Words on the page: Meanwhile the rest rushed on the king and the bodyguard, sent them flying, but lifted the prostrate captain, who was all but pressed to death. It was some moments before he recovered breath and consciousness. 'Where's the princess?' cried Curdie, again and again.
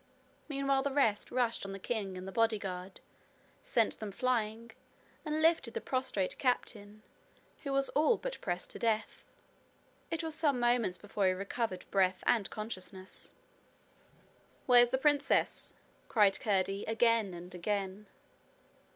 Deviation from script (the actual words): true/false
true